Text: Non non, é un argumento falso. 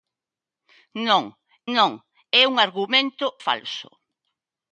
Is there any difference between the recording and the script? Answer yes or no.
no